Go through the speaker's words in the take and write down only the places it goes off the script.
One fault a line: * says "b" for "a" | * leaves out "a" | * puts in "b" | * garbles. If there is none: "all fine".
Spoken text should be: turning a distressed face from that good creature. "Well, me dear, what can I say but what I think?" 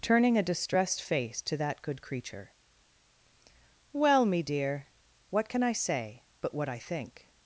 * says "to" for "from"